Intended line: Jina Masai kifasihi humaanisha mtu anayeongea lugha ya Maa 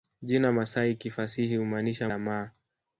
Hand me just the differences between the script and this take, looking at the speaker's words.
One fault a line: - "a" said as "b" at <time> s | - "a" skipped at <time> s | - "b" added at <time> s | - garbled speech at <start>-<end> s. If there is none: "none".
- "mtu anayeongea lugha" skipped at 2.1 s